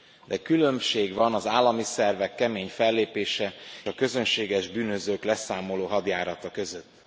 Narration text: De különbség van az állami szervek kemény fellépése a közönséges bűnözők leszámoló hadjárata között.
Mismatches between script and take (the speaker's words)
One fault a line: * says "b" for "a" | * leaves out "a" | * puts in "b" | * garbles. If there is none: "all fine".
all fine